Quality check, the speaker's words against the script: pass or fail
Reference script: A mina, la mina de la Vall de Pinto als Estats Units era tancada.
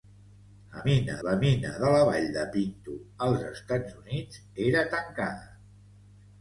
pass